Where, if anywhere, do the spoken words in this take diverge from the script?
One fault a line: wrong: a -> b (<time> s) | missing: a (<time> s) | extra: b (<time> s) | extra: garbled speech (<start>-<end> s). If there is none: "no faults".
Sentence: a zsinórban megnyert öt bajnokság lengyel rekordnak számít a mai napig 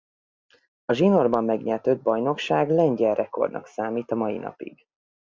no faults